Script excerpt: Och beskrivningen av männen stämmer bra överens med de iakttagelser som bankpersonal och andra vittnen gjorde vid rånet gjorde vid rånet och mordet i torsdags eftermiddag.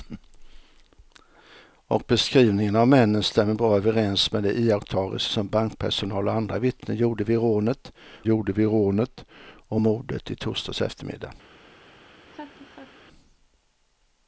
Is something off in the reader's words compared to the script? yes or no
no